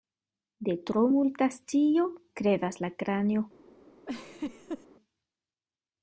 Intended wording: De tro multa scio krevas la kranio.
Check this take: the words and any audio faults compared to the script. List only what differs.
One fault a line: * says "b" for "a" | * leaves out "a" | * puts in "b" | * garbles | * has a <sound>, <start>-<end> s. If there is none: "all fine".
* has a laugh, 4.1-4.9 s